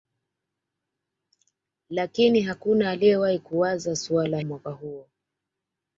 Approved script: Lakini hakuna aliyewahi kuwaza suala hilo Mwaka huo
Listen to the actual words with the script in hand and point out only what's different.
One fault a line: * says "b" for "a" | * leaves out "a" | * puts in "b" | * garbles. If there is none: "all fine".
* leaves out "hilo"